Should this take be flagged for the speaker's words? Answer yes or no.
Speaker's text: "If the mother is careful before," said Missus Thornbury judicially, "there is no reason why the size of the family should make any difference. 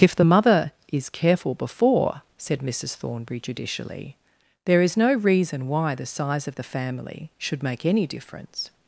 no